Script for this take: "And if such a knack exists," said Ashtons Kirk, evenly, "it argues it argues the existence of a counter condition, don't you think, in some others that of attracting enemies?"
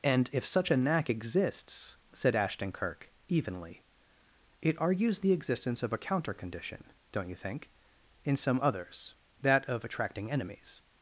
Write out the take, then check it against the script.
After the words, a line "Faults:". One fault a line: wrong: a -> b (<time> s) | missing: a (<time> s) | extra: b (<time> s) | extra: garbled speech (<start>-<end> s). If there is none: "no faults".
"And if such a knack exists," said Ashton Kirk, evenly, "it argues the existence of a counter condition, don't you think, in some others that of attracting enemies?"
Faults:
wrong: Ashtons -> Ashton (2.4 s)
missing: it argues (5.2 s)